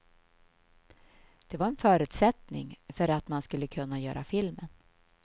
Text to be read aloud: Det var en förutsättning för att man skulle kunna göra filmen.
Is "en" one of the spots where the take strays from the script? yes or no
no